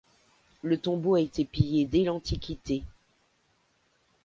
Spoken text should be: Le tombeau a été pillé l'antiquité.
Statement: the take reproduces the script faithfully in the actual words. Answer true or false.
false